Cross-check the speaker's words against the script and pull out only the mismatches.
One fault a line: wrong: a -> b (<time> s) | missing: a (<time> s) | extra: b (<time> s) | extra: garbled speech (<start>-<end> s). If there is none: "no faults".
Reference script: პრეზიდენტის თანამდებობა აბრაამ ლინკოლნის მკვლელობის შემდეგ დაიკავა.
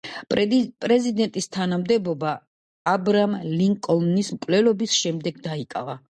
no faults